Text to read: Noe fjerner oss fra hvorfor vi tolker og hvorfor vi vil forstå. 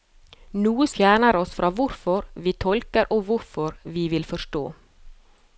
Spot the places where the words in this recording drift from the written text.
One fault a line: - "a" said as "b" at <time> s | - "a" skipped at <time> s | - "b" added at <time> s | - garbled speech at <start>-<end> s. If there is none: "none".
none